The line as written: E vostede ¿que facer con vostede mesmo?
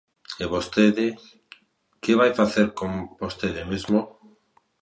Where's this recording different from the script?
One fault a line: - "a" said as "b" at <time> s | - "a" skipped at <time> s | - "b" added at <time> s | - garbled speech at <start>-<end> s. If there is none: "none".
- "vai" added at 2.2 s